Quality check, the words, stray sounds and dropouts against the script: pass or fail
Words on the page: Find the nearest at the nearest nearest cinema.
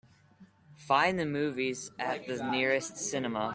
fail